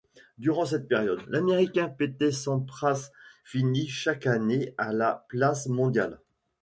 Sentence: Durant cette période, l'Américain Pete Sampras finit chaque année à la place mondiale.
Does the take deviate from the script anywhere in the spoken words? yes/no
no